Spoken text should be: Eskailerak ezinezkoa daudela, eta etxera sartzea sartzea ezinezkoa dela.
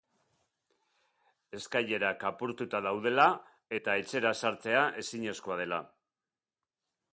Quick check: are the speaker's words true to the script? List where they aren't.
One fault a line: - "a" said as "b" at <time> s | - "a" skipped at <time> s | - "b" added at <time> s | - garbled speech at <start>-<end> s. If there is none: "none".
- "ezinezkoa" said as "apurtuta" at 2.3 s
- "sartzea" skipped at 4.9 s